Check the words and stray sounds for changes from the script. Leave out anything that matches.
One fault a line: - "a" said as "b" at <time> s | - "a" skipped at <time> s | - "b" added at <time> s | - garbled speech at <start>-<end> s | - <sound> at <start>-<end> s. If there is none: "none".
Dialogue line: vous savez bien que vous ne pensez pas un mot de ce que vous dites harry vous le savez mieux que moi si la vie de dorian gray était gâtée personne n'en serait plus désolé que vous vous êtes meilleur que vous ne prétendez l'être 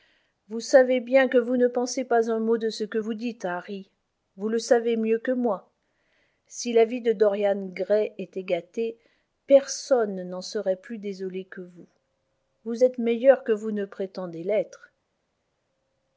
none